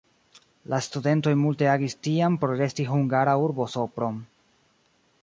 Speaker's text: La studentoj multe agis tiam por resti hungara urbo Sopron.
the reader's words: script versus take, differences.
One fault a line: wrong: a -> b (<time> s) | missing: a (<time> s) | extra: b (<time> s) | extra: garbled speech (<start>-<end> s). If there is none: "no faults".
no faults